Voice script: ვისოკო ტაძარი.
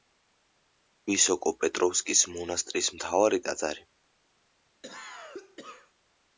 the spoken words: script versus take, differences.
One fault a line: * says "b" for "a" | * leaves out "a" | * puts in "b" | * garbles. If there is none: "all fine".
* puts in "პეტროვსკის მონასტრის მთავარი"